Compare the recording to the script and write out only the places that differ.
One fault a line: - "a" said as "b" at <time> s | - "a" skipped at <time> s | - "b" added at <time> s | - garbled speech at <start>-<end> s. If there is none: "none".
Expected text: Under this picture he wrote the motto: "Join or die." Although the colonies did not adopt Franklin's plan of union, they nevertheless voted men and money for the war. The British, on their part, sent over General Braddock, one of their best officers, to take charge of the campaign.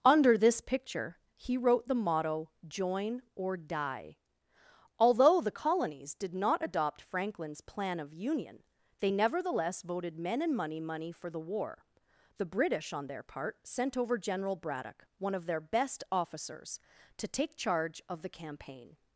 - "money" added at 10.8 s